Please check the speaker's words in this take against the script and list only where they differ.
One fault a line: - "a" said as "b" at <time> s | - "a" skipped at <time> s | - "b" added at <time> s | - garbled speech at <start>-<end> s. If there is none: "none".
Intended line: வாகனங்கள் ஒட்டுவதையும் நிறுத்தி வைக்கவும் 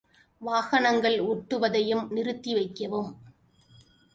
none